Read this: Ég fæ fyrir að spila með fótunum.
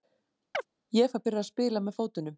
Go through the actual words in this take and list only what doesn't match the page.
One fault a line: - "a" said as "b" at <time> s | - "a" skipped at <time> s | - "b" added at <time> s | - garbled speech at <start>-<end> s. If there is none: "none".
none